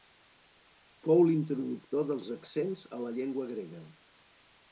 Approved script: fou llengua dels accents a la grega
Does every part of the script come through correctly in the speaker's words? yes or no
no